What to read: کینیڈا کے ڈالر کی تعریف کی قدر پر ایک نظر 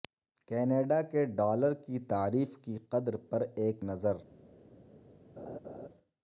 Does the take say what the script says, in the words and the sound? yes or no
no